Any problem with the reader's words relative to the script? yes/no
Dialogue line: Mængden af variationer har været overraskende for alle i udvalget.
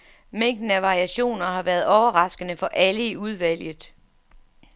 no